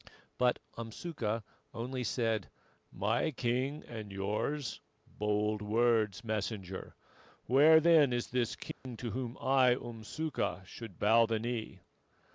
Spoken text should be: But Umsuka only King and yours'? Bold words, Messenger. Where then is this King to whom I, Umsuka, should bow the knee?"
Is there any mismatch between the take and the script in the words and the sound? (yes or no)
yes